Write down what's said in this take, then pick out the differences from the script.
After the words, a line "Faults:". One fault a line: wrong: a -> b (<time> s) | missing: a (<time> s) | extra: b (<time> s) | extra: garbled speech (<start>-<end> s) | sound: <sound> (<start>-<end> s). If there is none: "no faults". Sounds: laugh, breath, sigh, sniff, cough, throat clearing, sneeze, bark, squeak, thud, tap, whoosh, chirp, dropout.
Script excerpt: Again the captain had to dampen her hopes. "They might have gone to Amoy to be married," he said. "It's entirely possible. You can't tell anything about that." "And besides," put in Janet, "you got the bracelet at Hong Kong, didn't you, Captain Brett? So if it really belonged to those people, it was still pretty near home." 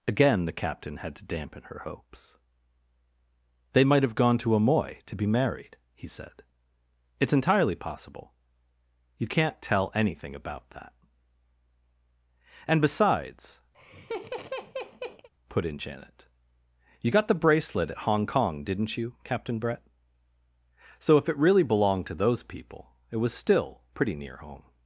Again the captain had to dampen her hopes. "They might have gone to Amoy to be married," he said. "It's entirely possible. You can't tell anything about that." "And besides," put in Janet, "you got the bracelet at Hong Kong, didn't you, Captain Brett? So if it really belonged to those people, it was still pretty near home."
Faults:
sound: laugh (13.7-15.3 s)